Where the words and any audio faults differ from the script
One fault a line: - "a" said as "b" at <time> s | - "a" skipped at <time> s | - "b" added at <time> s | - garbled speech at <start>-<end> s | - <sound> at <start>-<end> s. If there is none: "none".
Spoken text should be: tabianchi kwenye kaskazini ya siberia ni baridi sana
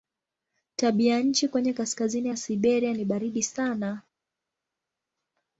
none